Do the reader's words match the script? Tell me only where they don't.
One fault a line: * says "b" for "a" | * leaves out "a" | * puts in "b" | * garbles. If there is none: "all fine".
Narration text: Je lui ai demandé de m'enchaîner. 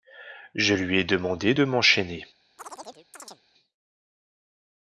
all fine